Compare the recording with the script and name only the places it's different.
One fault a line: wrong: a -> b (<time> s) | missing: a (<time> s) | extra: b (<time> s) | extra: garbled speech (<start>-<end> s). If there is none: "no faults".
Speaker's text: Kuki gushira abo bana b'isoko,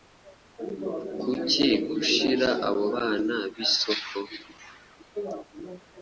no faults